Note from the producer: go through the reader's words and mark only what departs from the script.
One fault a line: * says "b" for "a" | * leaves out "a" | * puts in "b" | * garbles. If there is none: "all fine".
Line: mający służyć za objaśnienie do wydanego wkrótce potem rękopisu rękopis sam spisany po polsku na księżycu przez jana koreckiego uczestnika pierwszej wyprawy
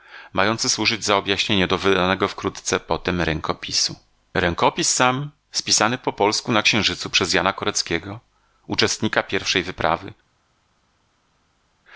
all fine